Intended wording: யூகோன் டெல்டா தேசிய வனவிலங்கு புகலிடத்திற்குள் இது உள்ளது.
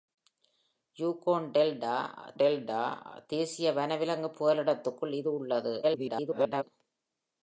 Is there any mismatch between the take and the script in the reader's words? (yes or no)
yes